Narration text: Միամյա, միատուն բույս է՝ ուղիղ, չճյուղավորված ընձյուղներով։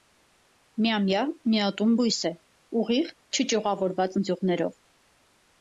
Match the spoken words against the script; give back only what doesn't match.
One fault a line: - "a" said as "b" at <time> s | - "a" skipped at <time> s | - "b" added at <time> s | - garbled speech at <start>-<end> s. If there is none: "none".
none